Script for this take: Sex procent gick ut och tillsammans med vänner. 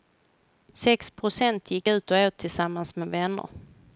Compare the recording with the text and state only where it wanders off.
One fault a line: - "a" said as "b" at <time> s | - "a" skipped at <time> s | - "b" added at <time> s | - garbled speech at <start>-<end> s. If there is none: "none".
- "åt" added at 2.2 s